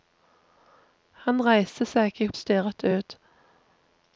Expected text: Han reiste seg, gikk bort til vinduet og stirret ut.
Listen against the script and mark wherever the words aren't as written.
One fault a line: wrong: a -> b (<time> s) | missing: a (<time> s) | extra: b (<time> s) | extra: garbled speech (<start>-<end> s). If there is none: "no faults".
missing: bort til vinduet (2.3 s)